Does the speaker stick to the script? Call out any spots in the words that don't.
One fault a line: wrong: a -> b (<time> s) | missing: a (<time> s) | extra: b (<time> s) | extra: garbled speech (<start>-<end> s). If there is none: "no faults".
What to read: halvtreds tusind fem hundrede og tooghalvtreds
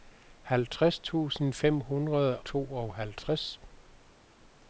missing: og (2.4 s)